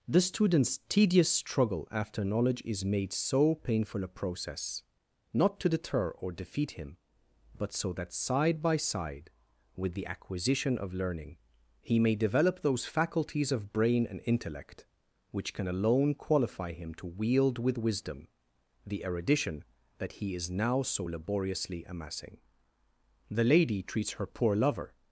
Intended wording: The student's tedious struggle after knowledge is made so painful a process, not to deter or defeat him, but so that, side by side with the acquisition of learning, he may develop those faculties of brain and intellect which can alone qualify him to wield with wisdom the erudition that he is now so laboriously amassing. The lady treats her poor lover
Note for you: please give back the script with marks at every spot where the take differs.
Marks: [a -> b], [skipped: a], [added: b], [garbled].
The student's tedious struggle after knowledge is made so painful a process, not to deter or defeat him, but so that, side by side with the acquisition of learning, he may develop those faculties of brain and intellect which can alone qualify him to wield with wisdom the erudition that he is now so laboriously amassing. The lady treats her poor lover